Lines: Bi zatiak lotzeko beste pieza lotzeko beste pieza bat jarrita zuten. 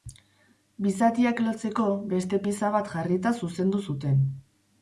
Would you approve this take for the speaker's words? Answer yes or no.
no